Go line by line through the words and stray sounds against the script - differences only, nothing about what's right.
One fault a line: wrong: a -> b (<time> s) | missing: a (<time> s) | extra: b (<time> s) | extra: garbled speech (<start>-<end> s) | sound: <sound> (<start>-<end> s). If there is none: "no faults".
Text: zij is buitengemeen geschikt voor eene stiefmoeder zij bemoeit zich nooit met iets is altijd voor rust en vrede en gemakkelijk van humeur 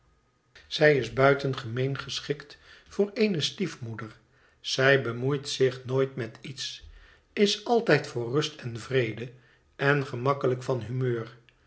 no faults